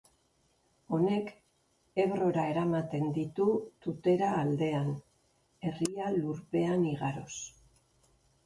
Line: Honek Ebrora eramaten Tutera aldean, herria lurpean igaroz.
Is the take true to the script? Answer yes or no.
no